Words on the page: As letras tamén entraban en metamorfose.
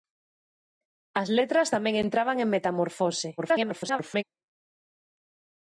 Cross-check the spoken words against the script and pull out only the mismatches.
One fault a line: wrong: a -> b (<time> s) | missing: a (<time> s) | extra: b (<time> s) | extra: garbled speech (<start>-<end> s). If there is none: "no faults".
extra: garbled speech (3.4-4.2 s)